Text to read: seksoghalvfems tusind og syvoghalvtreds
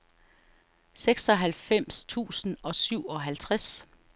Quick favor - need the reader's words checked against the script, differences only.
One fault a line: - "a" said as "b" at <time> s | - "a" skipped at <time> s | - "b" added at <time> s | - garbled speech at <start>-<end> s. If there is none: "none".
none